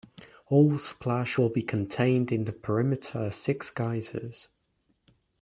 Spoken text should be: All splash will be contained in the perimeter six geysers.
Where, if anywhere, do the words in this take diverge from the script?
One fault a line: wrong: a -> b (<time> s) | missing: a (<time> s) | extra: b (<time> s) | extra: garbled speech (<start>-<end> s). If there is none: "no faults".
no faults